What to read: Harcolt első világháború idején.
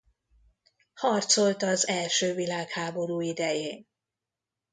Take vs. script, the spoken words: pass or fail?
fail